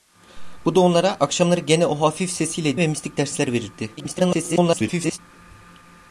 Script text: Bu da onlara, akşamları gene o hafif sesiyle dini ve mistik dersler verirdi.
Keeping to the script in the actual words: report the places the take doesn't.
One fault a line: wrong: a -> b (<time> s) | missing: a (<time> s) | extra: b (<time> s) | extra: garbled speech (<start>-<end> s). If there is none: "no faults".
missing: dini (2.8 s)
extra: garbled speech (4.0-5.2 s)